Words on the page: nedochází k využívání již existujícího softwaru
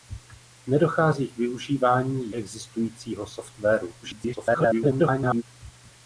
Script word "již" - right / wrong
wrong